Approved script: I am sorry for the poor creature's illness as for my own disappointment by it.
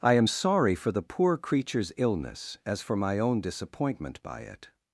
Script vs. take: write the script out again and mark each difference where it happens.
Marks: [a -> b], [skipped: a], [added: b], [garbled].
I am sorry for the poor creature's illness as for my own disappointment by it.